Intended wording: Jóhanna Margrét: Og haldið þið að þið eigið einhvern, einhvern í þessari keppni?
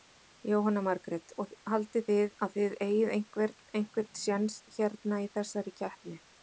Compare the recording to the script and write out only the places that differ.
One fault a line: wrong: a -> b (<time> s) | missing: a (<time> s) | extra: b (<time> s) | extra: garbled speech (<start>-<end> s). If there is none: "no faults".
extra: séns hérna (4.3 s)